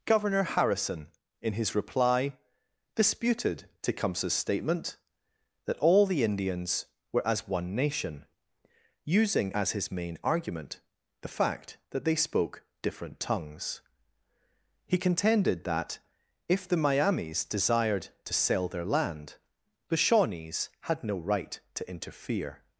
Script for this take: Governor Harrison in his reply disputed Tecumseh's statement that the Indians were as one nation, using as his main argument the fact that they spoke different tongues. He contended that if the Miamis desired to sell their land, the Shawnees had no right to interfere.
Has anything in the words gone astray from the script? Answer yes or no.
yes